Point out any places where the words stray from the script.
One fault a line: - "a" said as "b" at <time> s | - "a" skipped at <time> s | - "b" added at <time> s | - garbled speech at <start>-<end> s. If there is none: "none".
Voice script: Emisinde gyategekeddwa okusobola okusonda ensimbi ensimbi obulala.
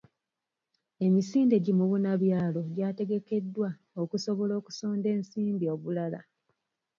- "gi mubunabyalo" added at 1.6 s
- "ensimbi" skipped at 5.7 s